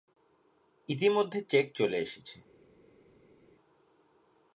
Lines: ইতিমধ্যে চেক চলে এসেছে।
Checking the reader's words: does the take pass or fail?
pass